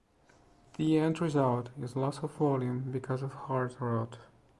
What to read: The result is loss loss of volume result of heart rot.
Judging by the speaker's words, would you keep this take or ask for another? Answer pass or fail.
fail